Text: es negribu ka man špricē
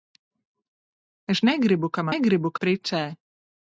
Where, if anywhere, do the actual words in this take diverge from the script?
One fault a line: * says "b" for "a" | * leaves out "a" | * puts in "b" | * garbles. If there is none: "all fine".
* says "negribu" for "man"